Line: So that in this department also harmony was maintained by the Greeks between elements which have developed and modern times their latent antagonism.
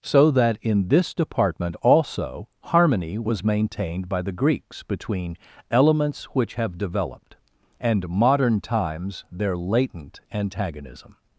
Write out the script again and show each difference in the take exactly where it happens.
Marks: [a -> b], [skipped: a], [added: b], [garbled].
So that in this department also harmony was maintained by the Greeks between elements which have developed and modern times their latent antagonism.